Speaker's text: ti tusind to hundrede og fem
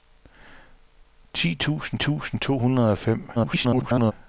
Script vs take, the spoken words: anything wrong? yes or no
yes